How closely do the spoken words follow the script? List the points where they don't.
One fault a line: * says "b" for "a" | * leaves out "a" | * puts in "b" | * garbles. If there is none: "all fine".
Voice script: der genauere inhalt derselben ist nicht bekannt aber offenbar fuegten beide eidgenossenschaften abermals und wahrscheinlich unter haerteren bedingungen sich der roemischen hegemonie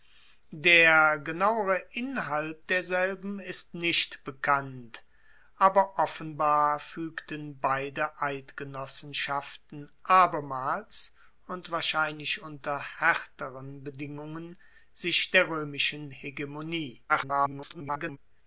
* garbles